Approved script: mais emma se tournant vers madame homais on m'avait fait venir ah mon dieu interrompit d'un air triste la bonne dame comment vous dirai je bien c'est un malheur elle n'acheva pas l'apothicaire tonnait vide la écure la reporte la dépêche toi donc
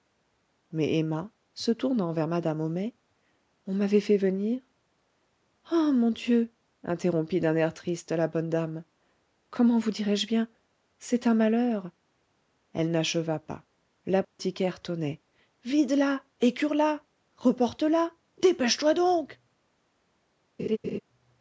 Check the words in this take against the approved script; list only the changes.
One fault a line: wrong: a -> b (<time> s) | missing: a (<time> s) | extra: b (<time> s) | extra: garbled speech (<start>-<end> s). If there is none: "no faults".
no faults